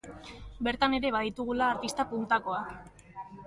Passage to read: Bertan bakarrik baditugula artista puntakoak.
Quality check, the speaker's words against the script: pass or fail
fail